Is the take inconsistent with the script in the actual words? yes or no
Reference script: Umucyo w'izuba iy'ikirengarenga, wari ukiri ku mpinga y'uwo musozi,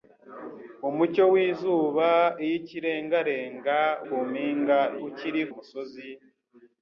yes